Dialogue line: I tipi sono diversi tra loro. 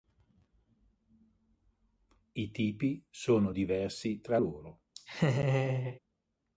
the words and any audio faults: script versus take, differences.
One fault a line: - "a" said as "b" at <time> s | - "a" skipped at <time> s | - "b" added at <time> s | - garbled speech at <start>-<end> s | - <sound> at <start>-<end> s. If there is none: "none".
- laugh at 4.9-6.0 s